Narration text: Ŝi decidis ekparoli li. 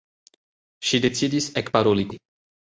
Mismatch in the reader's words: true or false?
false